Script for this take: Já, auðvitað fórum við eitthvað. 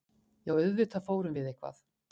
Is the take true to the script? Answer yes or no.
yes